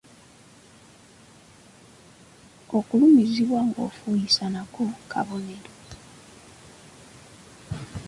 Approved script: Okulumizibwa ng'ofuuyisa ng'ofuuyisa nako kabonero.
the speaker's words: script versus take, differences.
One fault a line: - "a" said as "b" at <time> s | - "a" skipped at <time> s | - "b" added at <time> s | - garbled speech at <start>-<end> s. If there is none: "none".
- "ng'ofuuyisa" skipped at 4.4 s